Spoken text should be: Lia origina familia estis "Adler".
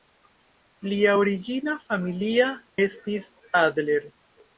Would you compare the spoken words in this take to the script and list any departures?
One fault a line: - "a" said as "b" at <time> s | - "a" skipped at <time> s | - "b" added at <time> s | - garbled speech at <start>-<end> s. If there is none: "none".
none